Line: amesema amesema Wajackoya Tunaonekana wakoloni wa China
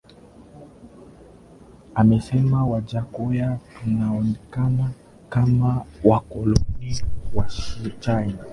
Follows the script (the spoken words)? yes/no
no